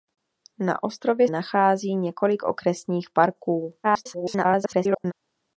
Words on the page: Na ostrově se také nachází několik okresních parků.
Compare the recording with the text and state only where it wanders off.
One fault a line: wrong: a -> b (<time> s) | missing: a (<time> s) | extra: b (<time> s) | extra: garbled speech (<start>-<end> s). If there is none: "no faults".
missing: se také (1.3 s)
extra: garbled speech (3.8-5.1 s)